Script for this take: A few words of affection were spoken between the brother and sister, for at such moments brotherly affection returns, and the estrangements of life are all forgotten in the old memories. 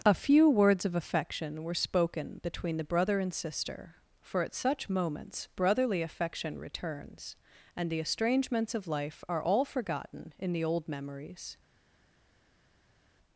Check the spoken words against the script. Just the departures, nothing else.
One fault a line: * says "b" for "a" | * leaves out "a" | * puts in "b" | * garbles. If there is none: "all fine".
all fine